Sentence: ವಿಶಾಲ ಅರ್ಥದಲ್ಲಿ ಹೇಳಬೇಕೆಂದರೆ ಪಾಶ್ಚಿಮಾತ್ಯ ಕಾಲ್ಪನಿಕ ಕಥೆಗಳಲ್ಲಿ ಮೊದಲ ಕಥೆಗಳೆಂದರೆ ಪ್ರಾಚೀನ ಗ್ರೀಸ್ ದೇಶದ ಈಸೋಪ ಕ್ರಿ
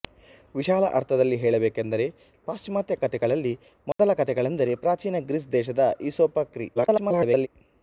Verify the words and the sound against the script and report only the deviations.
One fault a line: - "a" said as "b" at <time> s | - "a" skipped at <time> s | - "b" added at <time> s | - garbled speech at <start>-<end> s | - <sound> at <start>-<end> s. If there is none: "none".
- "ಕಾಲ್ಪನಿಕ" skipped at 3.0 s
- dropout at 3.9-4.0 s
- garbled speech at 6.7-7.5 s